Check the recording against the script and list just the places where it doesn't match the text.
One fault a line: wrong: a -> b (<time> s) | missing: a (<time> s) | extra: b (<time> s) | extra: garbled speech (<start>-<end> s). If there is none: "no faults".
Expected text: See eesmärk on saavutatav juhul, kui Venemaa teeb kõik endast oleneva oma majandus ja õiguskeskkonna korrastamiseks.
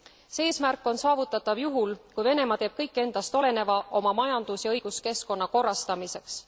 no faults